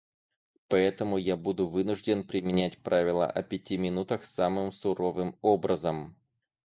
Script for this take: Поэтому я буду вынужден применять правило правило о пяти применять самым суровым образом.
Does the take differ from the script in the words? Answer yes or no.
yes